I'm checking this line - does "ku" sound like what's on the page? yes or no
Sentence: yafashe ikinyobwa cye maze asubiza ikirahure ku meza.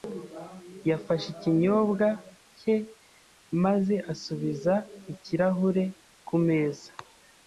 yes